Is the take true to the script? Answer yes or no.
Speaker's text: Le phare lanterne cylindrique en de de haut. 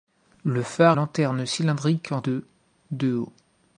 yes